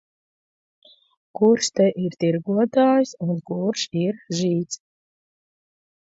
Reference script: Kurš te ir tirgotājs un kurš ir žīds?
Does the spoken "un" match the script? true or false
true